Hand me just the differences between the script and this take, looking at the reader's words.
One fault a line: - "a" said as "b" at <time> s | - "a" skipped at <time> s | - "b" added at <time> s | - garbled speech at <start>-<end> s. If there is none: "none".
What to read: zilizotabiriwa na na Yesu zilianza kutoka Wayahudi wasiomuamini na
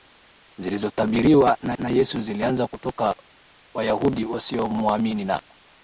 none